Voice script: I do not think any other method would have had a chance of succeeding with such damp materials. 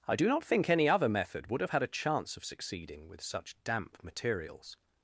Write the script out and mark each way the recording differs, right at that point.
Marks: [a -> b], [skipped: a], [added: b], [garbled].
I do not think any other method would have had a chance of succeeding with such damp materials.